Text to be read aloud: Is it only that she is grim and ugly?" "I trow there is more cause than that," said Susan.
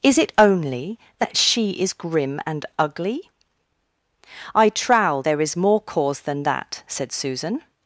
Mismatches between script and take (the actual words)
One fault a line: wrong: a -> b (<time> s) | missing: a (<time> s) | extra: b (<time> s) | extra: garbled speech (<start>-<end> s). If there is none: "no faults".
no faults